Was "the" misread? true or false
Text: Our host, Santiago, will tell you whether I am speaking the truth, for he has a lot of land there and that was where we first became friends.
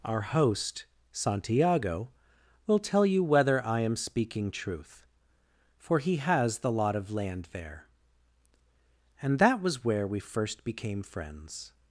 true